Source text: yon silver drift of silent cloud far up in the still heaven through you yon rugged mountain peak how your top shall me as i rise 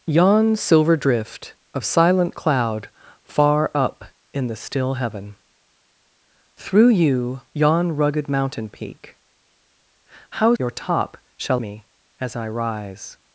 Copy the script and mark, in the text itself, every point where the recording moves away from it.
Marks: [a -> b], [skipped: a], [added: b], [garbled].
yon silver drift of silent cloud far up in the still heaven through you yon rugged mountain peak how your top shall me as i rise